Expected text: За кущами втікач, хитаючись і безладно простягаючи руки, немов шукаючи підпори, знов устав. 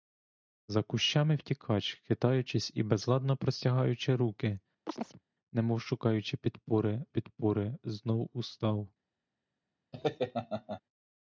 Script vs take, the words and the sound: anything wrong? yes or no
yes